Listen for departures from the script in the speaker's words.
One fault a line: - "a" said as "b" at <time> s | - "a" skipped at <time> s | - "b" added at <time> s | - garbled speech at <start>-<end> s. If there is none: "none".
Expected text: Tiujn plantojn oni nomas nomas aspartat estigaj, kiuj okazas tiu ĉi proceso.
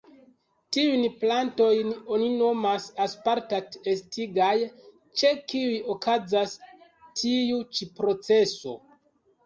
- "nomas" skipped at 2.9 s
- "ĉe" added at 5.2 s